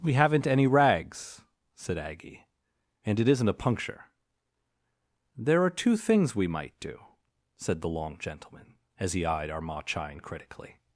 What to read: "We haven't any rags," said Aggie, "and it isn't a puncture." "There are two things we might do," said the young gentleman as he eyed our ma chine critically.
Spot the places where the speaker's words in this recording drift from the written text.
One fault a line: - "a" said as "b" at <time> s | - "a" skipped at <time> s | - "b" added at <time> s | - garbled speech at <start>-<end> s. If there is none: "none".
- "young" said as "long" at 7.9 s